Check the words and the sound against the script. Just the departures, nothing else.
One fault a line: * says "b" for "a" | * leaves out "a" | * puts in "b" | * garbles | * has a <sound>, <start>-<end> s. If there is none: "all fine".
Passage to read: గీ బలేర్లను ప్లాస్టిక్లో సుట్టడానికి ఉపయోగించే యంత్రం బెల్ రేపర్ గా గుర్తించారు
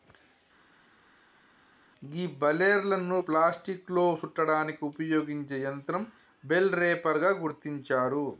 all fine